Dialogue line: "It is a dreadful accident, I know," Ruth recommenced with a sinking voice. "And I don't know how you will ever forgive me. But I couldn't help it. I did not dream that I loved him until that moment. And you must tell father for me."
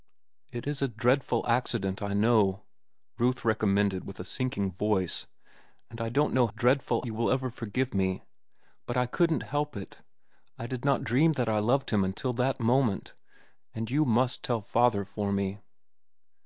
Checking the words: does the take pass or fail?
fail